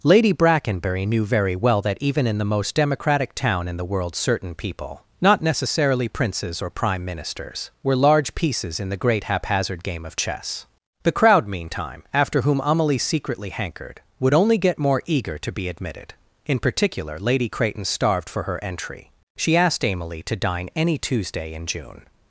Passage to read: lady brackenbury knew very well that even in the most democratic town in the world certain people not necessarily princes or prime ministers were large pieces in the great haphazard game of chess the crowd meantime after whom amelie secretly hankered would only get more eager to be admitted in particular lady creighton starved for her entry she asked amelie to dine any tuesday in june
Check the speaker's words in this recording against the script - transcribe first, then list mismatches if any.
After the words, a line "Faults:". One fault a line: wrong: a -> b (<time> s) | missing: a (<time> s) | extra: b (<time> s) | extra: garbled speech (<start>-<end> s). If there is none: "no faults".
lady brackenbury knew very well that even in the most democratic town in the world certain people not necessarily princes or prime ministers were large pieces in the great haphazard game of chess the crowd meantime after whom amelie secretly hankered would only get more eager to be admitted in particular lady creighton starved for her entry she asked amelie to dine any tuesday in june
Faults:
no faults